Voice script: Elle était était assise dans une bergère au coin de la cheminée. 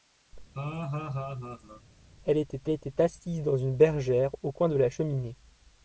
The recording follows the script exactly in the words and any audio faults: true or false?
false